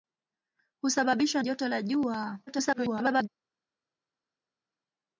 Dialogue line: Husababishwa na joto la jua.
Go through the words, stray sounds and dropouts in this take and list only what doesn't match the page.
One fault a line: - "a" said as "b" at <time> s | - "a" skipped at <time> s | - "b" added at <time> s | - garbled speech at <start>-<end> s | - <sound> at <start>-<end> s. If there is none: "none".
- "na" skipped at 1.4 s
- garbled speech at 2.5-3.3 s